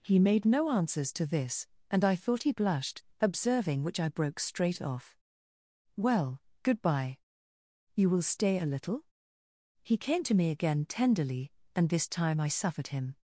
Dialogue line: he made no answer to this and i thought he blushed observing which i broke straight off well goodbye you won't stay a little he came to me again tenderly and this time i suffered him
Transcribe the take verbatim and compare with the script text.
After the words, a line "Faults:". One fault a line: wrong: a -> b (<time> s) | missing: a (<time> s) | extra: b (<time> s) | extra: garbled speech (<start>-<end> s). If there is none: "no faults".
he made no answers to this and i thought he blushed observing which i broke straight off well goodbye you will stay a little he came to me again tenderly and this time i suffered him
Faults:
wrong: answer -> answers (0.7 s)
wrong: won't -> will (8.1 s)